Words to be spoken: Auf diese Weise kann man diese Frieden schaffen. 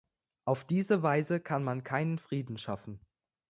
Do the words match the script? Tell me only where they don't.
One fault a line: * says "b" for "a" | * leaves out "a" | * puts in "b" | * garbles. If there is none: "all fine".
* says "keinen" for "diese"